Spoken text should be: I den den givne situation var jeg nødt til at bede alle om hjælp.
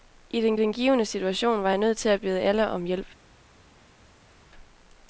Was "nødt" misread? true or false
false